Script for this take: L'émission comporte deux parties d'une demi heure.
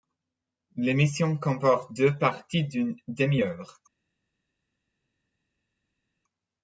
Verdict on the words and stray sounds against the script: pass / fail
pass